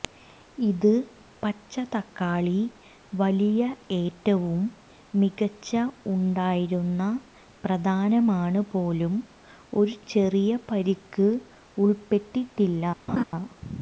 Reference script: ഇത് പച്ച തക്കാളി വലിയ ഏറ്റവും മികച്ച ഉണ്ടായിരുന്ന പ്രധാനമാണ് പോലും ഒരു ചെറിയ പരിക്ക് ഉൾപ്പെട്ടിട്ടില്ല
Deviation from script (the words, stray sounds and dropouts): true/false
true